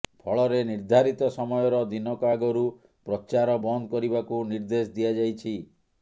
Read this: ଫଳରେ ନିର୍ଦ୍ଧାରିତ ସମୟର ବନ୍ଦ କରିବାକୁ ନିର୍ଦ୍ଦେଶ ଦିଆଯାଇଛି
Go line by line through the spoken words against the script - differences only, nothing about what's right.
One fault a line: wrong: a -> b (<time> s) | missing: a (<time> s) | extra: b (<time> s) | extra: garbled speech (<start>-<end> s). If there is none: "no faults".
extra: ଦିନକ ଆଗରୁ ପ୍ରଚାର (1.9 s)